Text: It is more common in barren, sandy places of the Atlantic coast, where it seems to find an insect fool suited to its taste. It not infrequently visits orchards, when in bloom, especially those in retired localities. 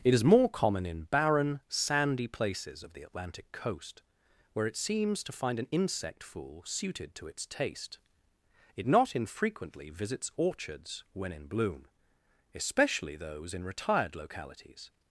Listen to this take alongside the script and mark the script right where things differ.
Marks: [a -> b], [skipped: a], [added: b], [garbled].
It is more common in barren, sandy places of the Atlantic coast, where it seems to find an insect fool suited to its taste. It not infrequently visits orchards, when in bloom, especially those in retired localities.